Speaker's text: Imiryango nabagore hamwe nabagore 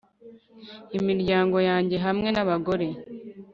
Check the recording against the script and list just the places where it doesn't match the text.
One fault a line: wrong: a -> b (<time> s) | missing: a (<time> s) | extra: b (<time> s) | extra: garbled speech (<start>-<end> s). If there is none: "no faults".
wrong: nabagore -> yanjye (1.7 s)